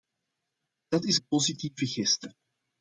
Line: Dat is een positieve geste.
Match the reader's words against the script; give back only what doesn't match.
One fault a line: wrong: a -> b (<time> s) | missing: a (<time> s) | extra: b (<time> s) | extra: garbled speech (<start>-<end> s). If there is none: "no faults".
no faults